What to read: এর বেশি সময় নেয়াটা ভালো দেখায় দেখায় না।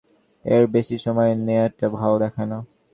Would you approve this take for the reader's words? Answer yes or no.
no